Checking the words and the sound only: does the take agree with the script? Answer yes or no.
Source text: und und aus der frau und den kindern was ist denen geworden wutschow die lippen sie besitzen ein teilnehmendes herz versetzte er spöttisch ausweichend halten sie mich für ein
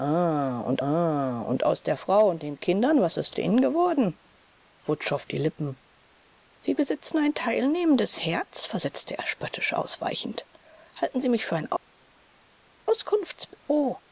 yes